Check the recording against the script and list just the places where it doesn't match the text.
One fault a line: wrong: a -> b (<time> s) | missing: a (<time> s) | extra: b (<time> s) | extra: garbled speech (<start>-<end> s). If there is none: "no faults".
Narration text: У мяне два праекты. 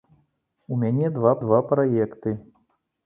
extra: два (1.5 s)